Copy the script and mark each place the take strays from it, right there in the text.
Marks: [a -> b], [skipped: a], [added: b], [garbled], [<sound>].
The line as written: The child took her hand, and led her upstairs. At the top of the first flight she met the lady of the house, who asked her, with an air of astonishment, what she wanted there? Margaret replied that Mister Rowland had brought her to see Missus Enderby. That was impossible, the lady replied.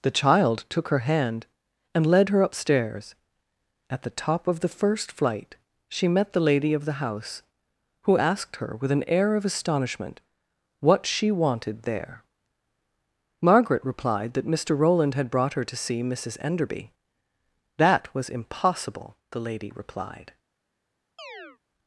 The child took her hand, and led her upstairs. At the top of the first flight she met the lady of the house, who asked her, with an air of astonishment, what she wanted there? Margaret replied that Mister Rowland had brought her to see Missus Enderby. That was impossible, the lady replied. [chirp]